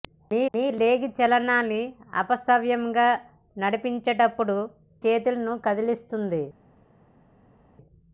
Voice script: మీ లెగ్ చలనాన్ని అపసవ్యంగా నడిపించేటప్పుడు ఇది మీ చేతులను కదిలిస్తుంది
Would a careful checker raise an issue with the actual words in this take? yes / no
yes